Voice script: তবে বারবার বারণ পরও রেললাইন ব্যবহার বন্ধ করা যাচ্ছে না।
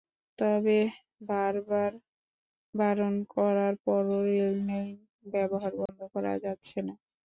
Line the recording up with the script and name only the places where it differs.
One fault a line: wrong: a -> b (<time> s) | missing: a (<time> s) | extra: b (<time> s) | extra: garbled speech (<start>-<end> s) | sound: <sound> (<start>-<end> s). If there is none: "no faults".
extra: করার (3.3 s)
sound: dropout (5.9-5.9 s)